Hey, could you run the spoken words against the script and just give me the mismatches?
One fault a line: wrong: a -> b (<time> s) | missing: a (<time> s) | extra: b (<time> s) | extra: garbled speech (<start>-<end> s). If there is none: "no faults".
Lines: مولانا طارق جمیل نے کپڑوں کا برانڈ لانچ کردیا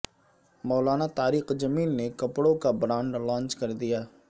no faults